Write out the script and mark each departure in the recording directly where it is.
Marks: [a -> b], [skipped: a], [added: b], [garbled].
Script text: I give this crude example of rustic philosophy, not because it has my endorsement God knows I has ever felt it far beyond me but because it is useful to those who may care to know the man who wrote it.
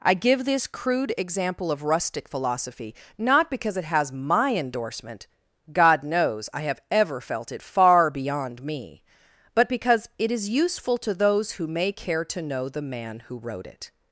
I give this crude example of rustic philosophy, not because it has my endorsement God knows I [has -> have] ever felt it far beyond me but because it is useful to those who may care to know the man who wrote it.